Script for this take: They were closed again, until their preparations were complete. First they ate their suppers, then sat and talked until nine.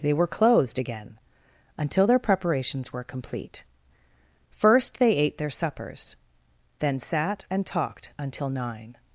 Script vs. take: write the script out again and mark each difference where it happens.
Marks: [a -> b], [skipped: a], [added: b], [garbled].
They were closed again, until their preparations were complete. First they ate their suppers, then sat and talked until nine.